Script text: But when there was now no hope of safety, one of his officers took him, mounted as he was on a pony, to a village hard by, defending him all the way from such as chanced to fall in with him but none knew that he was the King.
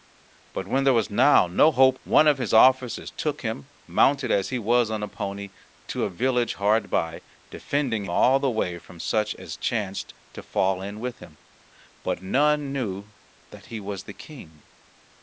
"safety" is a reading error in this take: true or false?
true